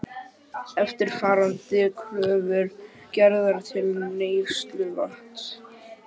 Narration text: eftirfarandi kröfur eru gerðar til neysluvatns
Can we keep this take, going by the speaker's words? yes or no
no